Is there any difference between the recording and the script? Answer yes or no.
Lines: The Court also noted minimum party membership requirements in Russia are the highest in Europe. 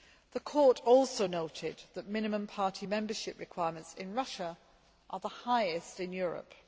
yes